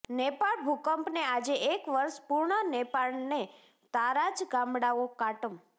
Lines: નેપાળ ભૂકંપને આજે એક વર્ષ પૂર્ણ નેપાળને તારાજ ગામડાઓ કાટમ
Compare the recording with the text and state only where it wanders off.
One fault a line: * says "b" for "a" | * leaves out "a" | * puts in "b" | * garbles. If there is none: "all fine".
all fine